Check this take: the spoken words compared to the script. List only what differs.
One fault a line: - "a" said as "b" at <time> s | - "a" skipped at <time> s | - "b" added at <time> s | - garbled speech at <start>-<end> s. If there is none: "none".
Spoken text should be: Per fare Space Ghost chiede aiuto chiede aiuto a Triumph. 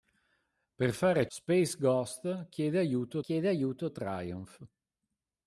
none